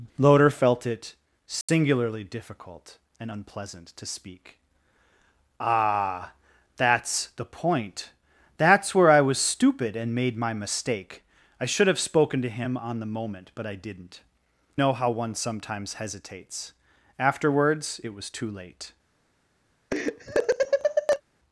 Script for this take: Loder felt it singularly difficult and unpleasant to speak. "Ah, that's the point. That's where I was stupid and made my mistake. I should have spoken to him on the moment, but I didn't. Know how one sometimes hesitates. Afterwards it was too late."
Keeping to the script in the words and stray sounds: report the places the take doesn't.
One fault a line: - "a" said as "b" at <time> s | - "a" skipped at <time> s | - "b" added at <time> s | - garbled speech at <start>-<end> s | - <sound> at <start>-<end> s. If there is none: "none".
- dropout at 1.6-1.7 s
- laugh at 19.9-21.2 s